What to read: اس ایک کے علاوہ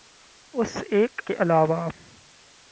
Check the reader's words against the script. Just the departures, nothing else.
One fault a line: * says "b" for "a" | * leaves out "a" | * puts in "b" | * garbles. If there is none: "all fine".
all fine